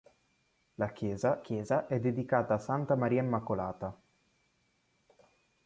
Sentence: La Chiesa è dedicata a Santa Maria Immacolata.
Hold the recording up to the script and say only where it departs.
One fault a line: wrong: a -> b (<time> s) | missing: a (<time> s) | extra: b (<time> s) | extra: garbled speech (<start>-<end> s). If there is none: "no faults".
extra: Chiesa (1.4 s)